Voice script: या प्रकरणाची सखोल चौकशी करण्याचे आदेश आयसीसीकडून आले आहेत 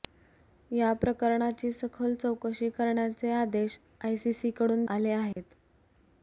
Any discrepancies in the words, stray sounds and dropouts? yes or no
yes